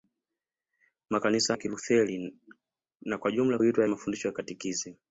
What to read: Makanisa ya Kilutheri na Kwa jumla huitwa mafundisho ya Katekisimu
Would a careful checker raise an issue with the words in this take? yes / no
no